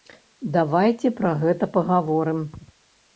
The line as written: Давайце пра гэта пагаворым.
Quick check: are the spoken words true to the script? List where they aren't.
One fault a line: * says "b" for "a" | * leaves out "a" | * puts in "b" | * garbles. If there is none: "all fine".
all fine